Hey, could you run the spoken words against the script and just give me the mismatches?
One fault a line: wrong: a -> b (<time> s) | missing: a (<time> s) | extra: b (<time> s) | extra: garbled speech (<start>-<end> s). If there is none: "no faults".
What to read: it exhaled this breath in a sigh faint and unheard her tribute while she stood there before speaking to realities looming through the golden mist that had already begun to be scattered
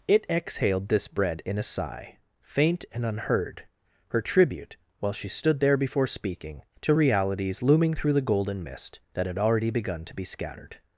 wrong: breath -> bread (1.1 s)